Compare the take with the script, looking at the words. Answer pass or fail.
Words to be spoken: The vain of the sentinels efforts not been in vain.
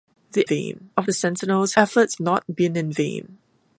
pass